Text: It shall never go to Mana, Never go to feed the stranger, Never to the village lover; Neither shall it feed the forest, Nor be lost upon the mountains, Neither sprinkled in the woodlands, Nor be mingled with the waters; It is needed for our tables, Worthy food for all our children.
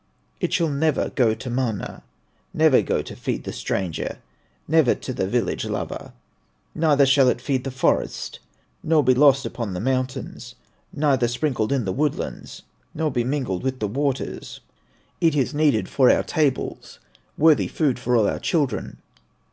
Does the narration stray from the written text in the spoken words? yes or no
no